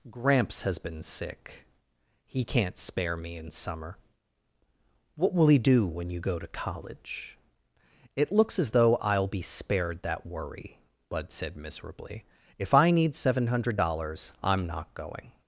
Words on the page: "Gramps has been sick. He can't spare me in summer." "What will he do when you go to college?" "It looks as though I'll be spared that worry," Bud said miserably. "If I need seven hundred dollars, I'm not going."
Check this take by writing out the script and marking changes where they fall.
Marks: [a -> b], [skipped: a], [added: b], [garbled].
"Gramps has been sick. He can't spare me in summer." "What will he do when you go to college?" "It looks as though I'll be spared that worry," Bud said miserably. "If I need seven hundred dollars, I'm not going."